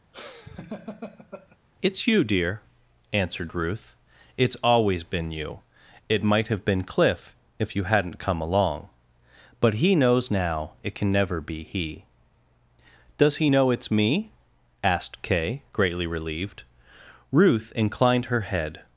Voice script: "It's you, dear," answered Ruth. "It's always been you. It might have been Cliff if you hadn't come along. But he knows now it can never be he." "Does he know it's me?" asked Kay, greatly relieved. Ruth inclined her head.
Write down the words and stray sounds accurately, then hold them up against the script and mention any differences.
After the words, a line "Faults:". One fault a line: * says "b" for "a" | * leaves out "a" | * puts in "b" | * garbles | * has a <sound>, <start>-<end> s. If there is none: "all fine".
"It's you, dear," answered Ruth. "It's always been you. It might have been Cliff if you hadn't come along. But he knows now it can never be he." "Does he know it's me?" asked Kay, greatly relieved. Ruth inclined her head.
Faults:
* has a laugh, 0.1-1.6 s